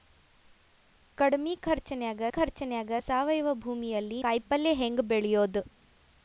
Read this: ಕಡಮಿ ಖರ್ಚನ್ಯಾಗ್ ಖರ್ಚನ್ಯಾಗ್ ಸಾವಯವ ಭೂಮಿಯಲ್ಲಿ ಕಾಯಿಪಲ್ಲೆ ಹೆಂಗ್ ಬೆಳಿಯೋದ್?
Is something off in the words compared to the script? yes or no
no